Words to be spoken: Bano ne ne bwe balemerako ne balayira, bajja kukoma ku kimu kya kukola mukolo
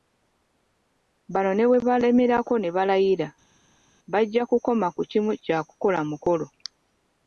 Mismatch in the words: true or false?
true